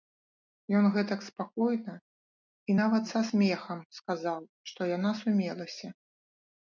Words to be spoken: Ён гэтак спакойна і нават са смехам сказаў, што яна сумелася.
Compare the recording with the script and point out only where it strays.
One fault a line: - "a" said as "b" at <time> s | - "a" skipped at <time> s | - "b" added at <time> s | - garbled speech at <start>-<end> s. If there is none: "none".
none